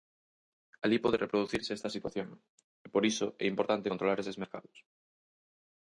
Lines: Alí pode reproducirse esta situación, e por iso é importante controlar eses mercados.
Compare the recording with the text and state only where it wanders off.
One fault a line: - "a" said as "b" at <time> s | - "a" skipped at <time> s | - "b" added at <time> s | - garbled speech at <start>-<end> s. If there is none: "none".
none